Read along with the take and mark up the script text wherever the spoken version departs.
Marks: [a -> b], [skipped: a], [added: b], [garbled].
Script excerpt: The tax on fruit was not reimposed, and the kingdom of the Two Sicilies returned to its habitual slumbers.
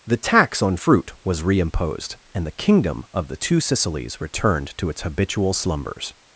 The tax on fruit was [skipped: not] reimposed, and the kingdom of the Two Sicilies returned to its habitual slumbers.